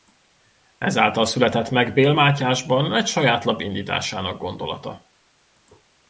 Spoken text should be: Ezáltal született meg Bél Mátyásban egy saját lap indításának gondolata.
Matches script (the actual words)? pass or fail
pass